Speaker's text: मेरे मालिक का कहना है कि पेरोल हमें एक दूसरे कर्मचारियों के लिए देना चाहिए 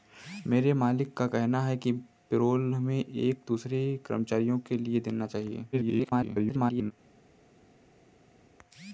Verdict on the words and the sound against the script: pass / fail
fail